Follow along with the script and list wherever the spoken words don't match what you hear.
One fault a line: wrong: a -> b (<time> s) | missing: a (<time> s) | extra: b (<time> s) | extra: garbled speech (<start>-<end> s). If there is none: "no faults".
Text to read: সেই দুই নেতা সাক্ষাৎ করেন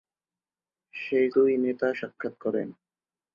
no faults